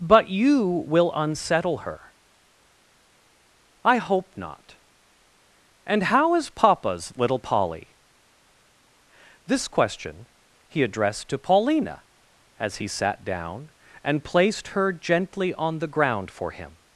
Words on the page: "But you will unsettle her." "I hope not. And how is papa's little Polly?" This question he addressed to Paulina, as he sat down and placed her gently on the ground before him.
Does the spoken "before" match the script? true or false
false